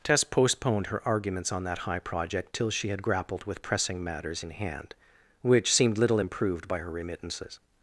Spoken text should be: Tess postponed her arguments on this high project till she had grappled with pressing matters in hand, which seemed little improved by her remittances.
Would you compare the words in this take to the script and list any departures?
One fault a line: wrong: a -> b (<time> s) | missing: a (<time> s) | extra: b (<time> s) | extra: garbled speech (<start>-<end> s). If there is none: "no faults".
wrong: this -> that (1.6 s)